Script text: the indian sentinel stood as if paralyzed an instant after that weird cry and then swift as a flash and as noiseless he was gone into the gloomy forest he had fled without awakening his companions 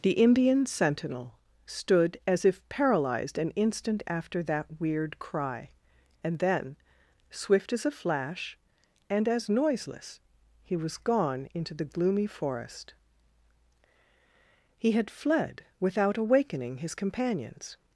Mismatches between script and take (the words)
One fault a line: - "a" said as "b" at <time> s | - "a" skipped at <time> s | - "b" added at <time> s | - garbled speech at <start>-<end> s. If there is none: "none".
none